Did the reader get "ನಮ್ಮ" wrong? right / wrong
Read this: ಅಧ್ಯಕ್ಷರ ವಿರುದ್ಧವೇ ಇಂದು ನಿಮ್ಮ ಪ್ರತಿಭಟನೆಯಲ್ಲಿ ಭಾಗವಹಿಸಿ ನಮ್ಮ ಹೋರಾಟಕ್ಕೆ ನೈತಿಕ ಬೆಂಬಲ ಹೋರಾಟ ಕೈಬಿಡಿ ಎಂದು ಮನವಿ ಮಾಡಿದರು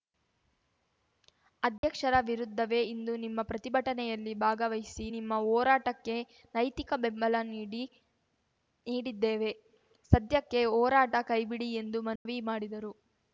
wrong